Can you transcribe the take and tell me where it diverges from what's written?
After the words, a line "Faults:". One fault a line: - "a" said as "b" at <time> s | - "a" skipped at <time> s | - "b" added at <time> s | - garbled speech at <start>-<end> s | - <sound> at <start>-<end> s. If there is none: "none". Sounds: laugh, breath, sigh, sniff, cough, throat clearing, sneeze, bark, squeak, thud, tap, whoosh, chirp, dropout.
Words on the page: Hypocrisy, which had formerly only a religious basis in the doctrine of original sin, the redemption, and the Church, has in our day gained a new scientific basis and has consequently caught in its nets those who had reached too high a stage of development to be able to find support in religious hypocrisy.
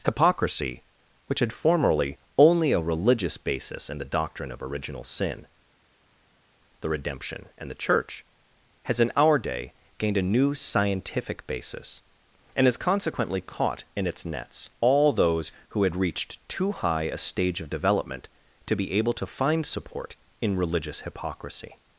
Hypocrisy, which had formerly only a religious basis in the doctrine of original sin, the redemption, and the Church, has in our day gained a new scientific basis and has consequently caught in its nets all those who had reached too high a stage of development to be able to find support in religious hypocrisy.
Faults:
- "all" added at 14.8 s